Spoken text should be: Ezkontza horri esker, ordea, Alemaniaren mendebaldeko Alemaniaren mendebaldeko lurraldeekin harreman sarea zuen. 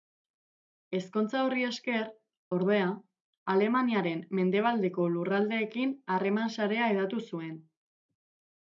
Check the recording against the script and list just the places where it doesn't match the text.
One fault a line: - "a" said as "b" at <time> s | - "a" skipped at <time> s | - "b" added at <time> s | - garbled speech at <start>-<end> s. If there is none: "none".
- "Alemaniaren mendebaldeko" skipped at 5.1 s
- "hedatu" added at 6.9 s